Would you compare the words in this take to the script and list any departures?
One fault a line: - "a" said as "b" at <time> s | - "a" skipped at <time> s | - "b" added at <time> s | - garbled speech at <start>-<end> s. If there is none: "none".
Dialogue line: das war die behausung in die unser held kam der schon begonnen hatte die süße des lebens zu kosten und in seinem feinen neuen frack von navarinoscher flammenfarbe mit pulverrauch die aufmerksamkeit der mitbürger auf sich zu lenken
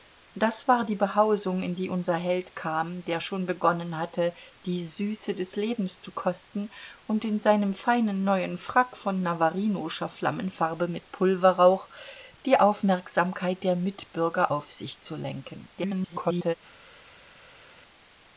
- garbled speech at 15.8-16.5 s